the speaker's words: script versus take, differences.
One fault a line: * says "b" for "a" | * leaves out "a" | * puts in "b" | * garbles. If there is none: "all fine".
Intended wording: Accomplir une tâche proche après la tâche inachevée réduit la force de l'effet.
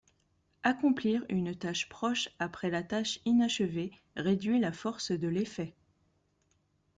all fine